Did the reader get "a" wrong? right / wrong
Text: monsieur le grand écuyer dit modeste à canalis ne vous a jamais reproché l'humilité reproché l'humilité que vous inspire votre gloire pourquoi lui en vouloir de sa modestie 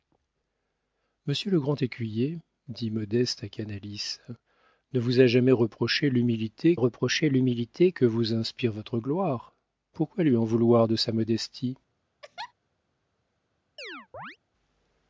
right